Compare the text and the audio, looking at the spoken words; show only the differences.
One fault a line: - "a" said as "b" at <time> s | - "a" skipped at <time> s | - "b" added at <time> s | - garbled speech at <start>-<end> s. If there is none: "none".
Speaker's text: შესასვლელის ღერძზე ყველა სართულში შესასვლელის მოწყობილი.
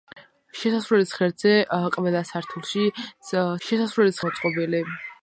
none